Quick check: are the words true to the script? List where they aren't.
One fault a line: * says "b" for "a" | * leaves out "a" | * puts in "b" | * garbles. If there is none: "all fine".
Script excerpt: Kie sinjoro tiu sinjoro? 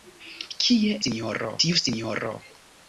all fine